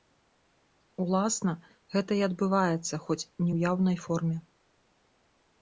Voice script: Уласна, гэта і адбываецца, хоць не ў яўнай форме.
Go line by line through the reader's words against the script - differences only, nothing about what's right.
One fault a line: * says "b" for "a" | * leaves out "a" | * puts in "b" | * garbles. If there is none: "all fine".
all fine